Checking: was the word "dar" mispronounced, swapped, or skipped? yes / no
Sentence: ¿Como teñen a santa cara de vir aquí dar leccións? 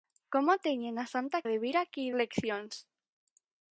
yes